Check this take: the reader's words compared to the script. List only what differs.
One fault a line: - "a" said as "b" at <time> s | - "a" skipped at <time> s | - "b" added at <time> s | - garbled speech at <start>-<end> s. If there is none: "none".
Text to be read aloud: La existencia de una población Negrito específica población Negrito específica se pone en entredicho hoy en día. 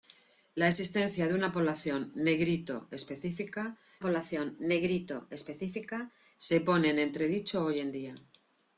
none